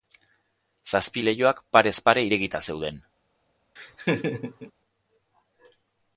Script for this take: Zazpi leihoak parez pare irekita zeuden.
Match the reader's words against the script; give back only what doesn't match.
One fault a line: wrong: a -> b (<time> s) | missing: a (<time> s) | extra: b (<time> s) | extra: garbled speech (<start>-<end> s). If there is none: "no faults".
no faults